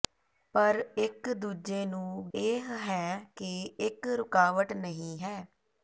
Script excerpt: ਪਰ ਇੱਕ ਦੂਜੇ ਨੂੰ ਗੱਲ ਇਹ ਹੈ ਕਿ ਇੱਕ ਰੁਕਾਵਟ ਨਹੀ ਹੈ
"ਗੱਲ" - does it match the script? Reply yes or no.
no